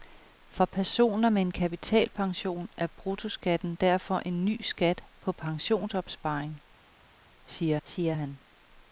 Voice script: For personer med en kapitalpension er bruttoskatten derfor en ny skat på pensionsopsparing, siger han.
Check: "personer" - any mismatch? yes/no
no